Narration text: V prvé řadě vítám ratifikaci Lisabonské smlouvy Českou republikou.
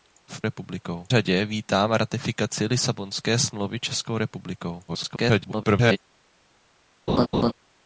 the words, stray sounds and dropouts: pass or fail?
fail